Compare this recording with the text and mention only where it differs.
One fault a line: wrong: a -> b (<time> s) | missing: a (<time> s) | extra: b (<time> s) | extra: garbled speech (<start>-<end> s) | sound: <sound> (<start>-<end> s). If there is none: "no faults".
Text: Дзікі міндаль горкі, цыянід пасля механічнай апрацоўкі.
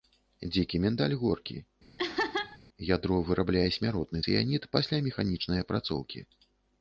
sound: laugh (2.0-2.6 s)
extra: ядро вырабляе смяротны (2.9 s)